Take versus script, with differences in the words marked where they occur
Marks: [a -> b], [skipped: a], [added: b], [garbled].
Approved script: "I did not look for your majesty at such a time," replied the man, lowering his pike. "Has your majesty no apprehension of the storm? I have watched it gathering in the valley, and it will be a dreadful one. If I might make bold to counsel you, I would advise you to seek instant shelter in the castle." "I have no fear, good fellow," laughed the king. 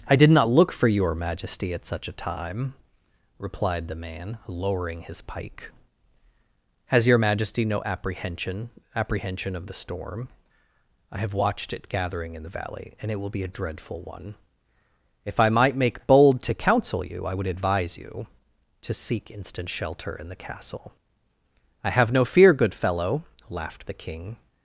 "I did not look for your majesty at such a time," replied the man, lowering his pike. "Has your majesty no apprehension [added: apprehension] of the storm? I have watched it gathering in the valley, and it will be a dreadful one. If I might make bold to counsel you, I would advise you to seek instant shelter in the castle." "I have no fear, good fellow," laughed the king.